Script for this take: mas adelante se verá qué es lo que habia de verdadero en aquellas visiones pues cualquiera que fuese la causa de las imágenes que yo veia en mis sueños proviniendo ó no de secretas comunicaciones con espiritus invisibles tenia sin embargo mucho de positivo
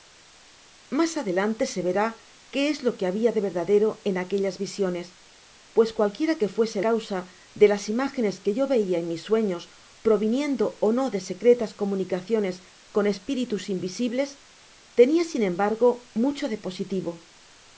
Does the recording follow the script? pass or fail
fail